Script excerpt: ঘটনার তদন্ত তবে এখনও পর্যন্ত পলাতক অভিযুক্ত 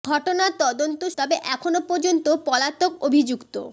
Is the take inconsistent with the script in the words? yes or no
no